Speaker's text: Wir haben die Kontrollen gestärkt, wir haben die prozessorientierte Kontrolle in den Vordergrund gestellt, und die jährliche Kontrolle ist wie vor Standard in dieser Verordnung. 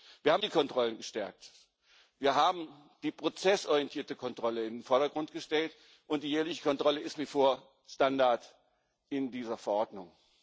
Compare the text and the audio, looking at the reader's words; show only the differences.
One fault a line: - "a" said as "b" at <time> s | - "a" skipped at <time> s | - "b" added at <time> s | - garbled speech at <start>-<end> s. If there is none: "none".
none